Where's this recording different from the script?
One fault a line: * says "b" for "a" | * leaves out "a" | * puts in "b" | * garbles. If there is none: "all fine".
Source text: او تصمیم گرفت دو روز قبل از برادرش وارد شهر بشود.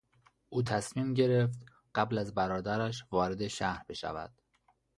* leaves out "دو روز"